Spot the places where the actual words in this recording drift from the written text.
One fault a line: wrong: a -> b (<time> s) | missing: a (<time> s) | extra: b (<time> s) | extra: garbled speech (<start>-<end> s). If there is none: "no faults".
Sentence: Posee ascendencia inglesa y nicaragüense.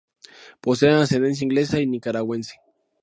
no faults